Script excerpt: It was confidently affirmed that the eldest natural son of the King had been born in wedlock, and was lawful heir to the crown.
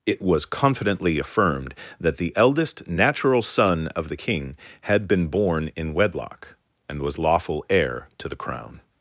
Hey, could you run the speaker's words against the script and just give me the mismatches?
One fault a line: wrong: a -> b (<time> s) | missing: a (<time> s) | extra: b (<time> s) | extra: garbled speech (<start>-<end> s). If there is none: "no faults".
no faults